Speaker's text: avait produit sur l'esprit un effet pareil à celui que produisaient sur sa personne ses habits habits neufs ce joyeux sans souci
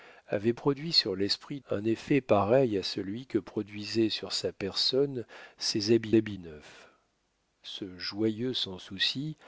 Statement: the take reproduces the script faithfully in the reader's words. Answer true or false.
true